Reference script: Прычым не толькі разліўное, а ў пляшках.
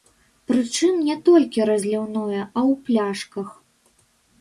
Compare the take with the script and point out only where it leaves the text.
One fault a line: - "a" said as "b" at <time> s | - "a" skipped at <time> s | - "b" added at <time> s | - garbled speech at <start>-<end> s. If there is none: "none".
none